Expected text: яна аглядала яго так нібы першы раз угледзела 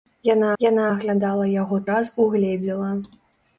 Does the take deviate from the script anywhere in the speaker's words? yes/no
yes